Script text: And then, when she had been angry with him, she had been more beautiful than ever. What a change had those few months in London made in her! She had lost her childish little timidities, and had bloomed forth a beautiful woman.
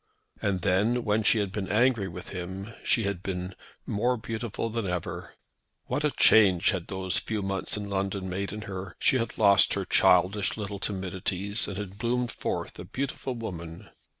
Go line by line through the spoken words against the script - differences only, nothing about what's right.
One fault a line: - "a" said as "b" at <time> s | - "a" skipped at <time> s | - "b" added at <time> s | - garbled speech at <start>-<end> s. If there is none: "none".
none